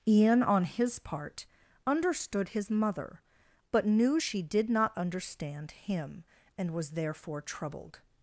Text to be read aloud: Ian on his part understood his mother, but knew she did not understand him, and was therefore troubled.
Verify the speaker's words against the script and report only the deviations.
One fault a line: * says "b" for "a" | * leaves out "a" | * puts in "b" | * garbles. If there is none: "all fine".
all fine